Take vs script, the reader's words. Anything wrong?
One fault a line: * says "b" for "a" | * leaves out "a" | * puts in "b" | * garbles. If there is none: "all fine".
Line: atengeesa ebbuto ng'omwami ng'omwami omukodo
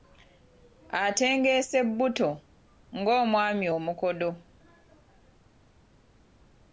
* leaves out "ng'omwami"